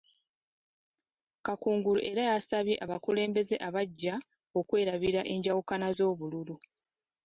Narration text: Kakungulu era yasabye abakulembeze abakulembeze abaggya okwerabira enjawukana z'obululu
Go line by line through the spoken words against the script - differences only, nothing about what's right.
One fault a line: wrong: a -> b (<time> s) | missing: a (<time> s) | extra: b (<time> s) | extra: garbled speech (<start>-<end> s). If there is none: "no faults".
missing: abakulembeze (3.6 s)